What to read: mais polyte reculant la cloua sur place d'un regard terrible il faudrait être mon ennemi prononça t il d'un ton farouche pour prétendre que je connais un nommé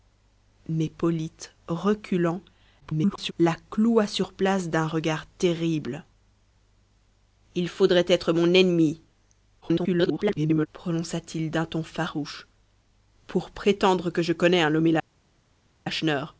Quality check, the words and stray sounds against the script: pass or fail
fail